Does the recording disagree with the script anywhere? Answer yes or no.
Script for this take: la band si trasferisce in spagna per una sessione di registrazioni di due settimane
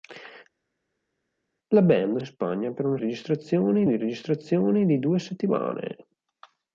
yes